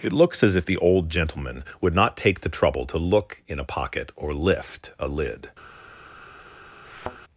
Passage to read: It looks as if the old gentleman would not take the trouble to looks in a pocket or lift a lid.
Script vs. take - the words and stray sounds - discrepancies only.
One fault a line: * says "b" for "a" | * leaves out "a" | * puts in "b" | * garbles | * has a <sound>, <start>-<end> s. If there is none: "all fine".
* says "look" for "looks"
* has a thud, 6.9-7.2 s